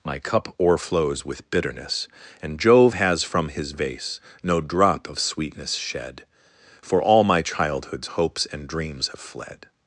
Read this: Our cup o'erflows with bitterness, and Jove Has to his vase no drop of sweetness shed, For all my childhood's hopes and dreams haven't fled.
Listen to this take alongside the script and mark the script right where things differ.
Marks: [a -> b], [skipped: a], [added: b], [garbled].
[Our -> My] cup o'erflows with bitterness, and Jove Has [to -> from] his vase no drop of sweetness shed, For all my childhood's hopes and dreams [haven't -> have] fled.